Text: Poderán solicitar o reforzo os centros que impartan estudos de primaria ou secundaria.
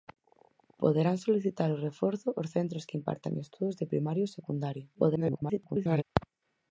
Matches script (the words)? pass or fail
fail